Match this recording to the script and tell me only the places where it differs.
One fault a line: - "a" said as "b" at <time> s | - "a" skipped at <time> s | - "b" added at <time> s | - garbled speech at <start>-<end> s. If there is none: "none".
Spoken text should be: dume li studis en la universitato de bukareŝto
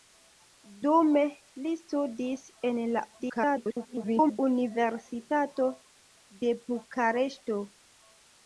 - garbled speech at 3.2-4.4 s